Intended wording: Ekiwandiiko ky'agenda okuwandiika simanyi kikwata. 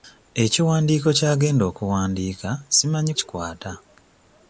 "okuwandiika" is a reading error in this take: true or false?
false